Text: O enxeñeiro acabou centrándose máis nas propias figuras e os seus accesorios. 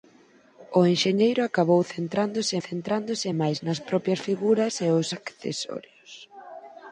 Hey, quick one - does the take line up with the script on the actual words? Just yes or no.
no